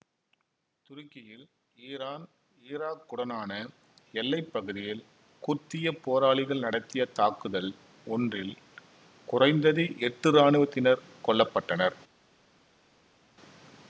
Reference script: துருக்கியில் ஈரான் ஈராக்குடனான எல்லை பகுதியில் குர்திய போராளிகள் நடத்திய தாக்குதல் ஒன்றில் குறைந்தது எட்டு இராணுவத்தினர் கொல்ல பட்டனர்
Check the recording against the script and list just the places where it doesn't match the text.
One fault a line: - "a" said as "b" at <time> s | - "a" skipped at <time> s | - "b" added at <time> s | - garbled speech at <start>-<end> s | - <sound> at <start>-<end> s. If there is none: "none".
none